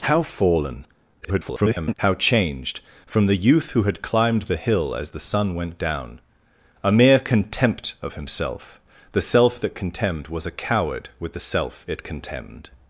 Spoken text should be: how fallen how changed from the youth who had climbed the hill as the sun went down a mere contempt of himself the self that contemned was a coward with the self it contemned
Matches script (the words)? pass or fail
fail